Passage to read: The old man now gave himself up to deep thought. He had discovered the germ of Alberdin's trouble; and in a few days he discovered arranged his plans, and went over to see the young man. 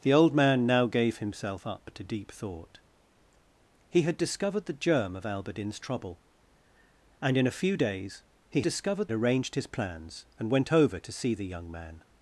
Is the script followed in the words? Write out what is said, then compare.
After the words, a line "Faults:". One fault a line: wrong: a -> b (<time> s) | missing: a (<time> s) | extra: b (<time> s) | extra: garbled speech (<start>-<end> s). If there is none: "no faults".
The old man now gave himself up to deep thought. He had discovered the germ of Alberdin's trouble; and in a few days he discovered arranged his plans, and went over to see the young man.
Faults:
no faults